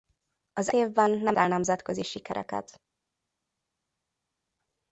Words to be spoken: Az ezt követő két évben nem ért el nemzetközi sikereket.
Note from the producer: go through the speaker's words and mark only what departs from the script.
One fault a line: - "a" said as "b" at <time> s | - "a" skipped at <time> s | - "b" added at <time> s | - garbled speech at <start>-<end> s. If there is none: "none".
- "ezt követő két" skipped at 0.7 s
- "ért" skipped at 1.4 s